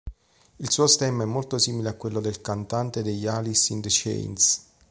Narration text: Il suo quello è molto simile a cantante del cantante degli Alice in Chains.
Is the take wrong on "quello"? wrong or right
wrong